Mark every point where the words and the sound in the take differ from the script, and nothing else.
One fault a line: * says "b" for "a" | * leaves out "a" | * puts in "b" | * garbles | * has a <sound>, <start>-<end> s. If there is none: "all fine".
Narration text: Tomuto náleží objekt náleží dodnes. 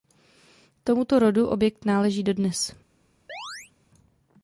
* says "rodu" for "náleží"
* has a chirp, 3.3-3.7 s